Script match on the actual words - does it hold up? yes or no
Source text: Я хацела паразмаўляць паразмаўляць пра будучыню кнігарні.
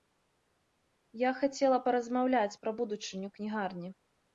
no